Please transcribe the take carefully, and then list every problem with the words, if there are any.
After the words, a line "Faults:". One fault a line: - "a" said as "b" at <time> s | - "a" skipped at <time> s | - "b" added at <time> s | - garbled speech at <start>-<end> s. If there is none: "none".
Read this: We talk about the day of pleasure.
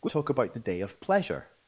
We talk about the day of pleasure.
Faults:
none